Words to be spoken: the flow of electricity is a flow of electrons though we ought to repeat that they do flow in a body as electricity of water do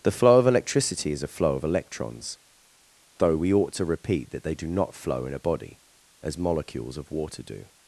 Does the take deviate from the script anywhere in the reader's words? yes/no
yes